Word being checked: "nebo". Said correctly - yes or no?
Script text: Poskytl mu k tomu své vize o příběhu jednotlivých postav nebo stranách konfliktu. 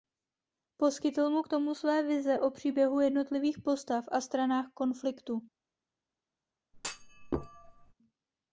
no